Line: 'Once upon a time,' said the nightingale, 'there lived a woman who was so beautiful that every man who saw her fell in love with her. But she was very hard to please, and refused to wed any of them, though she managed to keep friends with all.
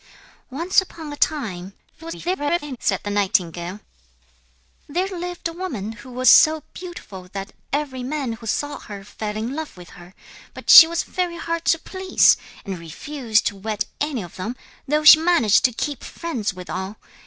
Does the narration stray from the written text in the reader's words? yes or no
yes